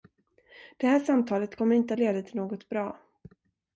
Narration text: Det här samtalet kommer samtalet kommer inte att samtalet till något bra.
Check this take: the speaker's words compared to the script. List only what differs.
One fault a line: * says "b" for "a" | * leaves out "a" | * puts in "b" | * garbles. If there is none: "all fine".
* leaves out "samtalet kommer"
* says "leda" for "samtalet"